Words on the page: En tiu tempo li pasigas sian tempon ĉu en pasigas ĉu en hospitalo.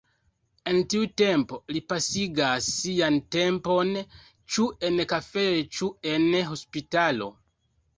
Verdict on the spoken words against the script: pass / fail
fail